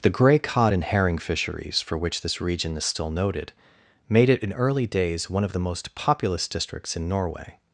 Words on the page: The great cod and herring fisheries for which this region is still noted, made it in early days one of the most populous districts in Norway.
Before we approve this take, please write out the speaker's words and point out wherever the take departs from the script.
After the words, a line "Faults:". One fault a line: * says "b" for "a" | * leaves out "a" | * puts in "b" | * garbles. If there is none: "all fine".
The grey cod and herring fisheries for which this region is still noted, made it in early days one of the most populous districts in Norway.
Faults:
* says "grey" for "great"